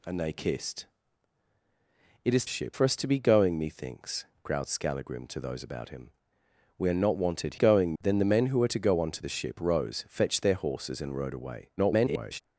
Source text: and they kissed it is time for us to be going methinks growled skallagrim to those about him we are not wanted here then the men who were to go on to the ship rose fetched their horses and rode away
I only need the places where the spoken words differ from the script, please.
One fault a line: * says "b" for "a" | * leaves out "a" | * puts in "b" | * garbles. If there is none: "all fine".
* says "ship" for "time"
* says "going" for "here"
* garbles